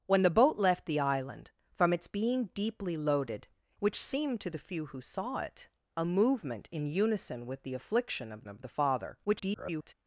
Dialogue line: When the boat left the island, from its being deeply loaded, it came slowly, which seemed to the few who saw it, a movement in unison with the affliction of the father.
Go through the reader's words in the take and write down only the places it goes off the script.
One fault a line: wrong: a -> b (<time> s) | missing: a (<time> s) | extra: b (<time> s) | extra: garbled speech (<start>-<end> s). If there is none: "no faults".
missing: it came slowly (3.5 s)
extra: of (8.5 s)
extra: garbled speech (9.2-9.9 s)